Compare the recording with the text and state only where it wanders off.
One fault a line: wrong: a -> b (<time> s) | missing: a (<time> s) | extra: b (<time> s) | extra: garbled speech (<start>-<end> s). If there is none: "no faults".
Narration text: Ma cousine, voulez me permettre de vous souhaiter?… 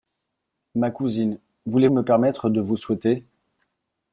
no faults